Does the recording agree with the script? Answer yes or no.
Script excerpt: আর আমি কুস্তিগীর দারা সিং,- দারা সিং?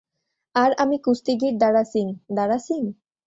yes